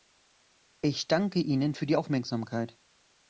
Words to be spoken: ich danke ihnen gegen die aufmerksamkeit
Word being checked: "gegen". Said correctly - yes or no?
no